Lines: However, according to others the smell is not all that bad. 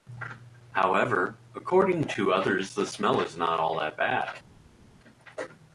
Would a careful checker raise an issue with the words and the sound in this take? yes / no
no